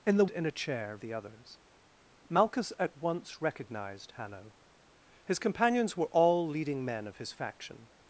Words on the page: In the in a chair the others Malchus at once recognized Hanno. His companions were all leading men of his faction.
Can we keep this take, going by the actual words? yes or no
yes